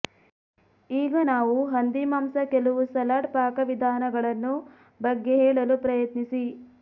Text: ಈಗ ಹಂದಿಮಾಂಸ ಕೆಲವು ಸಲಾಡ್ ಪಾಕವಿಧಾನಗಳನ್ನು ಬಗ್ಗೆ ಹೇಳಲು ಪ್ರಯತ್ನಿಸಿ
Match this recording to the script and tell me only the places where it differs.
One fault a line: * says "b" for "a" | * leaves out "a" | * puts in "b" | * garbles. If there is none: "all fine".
* puts in "ನಾವು"